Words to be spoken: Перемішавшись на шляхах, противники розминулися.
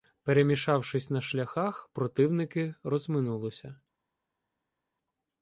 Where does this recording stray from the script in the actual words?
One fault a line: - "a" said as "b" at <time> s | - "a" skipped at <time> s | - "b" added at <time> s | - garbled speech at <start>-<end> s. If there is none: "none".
none